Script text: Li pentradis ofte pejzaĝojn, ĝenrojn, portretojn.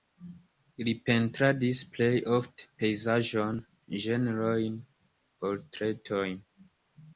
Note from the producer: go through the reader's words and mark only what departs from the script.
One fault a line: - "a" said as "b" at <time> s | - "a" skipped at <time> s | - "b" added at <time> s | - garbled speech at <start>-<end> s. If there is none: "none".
- "plej" added at 1.9 s